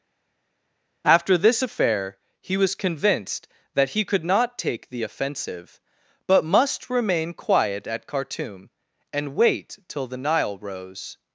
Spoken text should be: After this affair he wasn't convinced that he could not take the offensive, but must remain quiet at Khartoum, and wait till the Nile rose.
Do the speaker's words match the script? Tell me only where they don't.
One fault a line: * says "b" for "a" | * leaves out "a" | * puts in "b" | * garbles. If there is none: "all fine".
* says "was" for "wasn't"